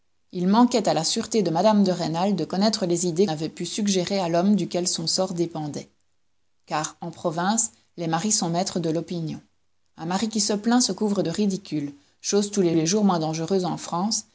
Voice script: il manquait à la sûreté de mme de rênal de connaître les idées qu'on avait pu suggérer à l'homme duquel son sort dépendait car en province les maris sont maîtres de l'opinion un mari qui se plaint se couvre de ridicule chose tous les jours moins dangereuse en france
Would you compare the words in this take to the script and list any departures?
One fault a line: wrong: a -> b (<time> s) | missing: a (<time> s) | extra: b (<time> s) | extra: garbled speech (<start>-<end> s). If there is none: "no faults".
missing: qu'on (3.3 s)
extra: les (12.7 s)